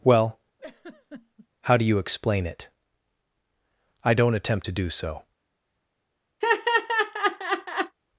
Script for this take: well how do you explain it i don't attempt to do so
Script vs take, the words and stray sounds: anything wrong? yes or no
yes